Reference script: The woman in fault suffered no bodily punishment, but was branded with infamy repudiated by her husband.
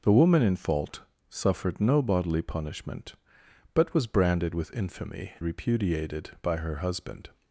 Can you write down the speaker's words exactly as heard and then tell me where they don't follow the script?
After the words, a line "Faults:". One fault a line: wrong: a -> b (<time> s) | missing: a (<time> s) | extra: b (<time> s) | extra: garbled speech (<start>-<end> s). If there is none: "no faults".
The woman in fault suffered no bodily punishment, but was branded with infamy repudiated by her husband.
Faults:
no faults